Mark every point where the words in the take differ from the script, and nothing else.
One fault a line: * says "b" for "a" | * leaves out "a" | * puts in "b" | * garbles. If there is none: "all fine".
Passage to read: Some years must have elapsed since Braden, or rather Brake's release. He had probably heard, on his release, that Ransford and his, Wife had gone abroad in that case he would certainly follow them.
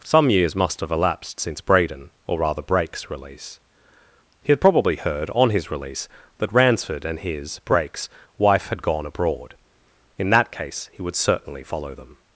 * puts in "Brake's"